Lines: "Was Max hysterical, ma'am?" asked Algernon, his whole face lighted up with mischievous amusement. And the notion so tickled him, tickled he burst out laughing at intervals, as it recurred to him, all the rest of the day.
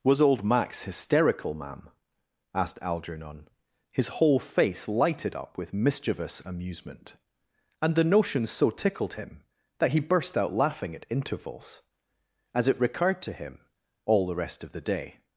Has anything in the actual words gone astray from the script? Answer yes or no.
yes